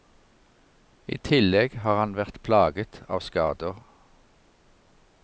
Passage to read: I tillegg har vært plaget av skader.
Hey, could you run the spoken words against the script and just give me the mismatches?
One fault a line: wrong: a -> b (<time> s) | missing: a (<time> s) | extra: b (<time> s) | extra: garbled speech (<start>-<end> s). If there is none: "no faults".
extra: han (2.0 s)